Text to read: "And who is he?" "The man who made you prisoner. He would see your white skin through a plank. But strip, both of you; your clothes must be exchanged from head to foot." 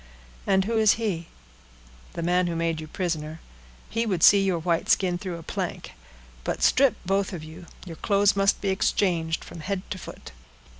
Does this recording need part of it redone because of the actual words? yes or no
no